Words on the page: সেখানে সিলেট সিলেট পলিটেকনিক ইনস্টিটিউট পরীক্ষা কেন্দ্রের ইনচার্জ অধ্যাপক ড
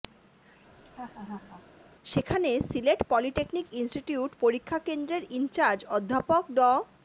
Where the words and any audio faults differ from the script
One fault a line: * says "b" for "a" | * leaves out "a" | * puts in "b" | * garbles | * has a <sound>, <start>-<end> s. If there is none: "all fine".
* has a laugh, 0.8-1.7 s
* leaves out "সিলেট"